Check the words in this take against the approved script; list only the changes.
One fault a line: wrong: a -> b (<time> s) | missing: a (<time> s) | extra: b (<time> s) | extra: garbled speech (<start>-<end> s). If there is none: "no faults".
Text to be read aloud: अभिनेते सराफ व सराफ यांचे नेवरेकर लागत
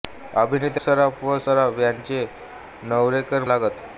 no faults